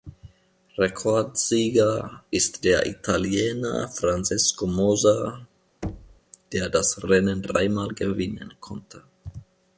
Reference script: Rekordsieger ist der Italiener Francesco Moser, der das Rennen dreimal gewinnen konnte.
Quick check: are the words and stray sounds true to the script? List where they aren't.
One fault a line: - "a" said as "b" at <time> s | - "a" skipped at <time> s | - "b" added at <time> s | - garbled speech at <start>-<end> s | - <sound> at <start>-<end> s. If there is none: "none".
- thud at 5.8-6.2 s